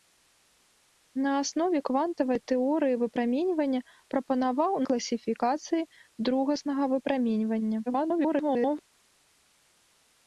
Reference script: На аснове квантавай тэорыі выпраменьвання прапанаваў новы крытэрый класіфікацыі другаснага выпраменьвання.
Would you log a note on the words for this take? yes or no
yes